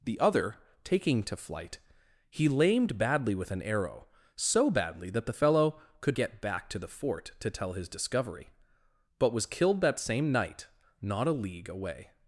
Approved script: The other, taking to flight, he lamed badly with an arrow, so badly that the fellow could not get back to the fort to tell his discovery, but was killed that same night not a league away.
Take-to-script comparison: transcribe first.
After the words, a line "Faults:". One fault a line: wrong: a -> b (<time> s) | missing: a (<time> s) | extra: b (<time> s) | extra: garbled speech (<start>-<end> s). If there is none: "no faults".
The other, taking to flight, he lamed badly with an arrow, so badly that the fellow could get back to the fort to tell his discovery, but was killed that same night not a league away.
Faults:
missing: not (6.2 s)